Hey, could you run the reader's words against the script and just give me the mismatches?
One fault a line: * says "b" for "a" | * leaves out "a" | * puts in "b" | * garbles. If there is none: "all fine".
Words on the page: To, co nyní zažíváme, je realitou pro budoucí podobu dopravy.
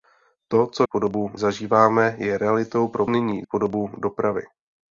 * says "podobu" for "nyní"
* says "nyní" for "budoucí"